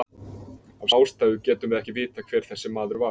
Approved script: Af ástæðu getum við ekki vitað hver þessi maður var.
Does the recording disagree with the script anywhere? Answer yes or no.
no